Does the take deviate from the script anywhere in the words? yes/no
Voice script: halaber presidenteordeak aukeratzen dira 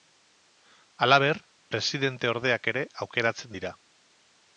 yes